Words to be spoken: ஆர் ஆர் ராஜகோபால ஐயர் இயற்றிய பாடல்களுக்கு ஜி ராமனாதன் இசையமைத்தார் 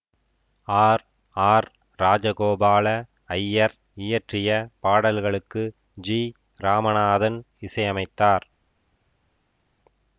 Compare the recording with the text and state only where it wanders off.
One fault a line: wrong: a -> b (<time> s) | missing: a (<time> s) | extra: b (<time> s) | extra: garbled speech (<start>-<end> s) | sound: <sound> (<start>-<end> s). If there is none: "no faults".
no faults